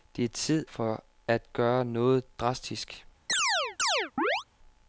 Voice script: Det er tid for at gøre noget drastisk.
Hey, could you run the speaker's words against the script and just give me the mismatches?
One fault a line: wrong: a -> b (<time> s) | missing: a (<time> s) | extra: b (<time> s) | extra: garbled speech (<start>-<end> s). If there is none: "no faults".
no faults